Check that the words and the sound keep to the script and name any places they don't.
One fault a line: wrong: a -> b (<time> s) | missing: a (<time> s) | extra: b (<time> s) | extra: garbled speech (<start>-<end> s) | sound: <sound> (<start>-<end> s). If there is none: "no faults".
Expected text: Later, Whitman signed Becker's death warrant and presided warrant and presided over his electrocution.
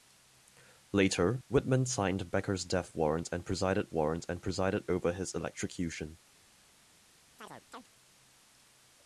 sound: chirp (7.4-7.9 s)